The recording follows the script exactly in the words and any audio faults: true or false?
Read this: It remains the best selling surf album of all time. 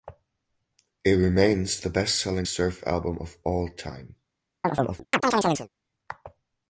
false